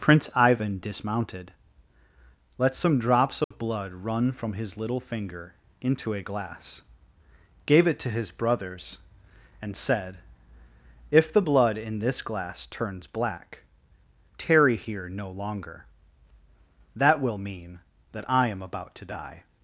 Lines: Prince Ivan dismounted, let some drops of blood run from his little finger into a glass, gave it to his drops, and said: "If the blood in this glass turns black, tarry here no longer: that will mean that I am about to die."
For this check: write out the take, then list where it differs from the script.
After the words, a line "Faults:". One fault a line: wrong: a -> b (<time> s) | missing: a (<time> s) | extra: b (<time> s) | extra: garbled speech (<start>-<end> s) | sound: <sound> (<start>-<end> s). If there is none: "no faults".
Prince Ivan dismounted, let some drops of blood run from his little finger into a glass, gave it to his brothers, and said: "If the blood in this glass turns black, tarry here no longer: that will mean that I am about to die."
Faults:
sound: dropout (3.4-3.5 s)
wrong: drops -> brothers (8.3 s)